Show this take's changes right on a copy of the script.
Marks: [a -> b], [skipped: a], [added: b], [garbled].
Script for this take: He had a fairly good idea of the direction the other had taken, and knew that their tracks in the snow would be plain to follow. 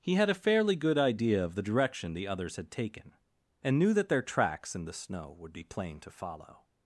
He had a fairly good idea of the direction the [other -> others] had taken, and knew that their tracks in the snow would be plain to follow.